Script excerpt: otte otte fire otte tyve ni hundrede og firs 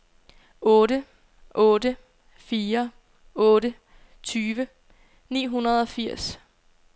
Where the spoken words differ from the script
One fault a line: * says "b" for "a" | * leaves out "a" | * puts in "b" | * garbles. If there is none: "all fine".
all fine